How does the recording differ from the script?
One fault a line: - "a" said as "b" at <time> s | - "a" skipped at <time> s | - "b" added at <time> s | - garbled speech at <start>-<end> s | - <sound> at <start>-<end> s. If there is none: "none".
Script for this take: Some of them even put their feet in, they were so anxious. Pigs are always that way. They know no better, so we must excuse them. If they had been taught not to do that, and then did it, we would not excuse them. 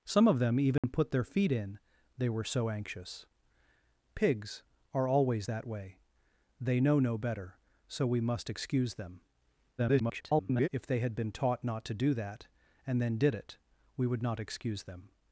- dropout at 0.8-0.8 s
- garbled speech at 9.8-10.7 s